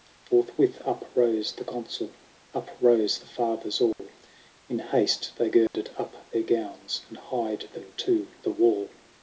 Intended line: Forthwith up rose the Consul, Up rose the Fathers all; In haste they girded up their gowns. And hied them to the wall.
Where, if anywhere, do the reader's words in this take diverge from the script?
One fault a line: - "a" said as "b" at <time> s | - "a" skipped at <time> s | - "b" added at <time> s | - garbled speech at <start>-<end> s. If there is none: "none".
none